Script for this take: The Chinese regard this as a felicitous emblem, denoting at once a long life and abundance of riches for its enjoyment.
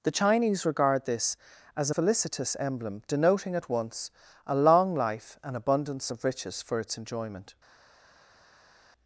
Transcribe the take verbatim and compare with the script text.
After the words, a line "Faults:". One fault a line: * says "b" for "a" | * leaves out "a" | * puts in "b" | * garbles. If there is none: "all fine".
The Chinese regard this as a felicitous emblem, denoting at once a long life and abundance of riches for its enjoyment.
Faults:
all fine